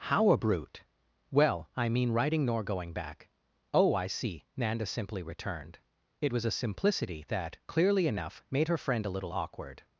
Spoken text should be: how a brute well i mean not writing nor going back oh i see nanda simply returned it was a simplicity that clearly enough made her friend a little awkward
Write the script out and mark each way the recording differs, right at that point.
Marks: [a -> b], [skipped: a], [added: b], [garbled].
how a brute well i mean [skipped: not] writing nor going back oh i see nanda simply returned it was a simplicity that clearly enough made her friend a little awkward